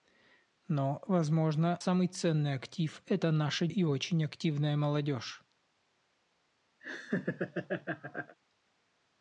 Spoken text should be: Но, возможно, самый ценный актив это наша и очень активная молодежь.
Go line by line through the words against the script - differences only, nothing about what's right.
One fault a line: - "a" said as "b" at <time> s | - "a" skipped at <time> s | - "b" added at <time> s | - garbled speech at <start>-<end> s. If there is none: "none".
none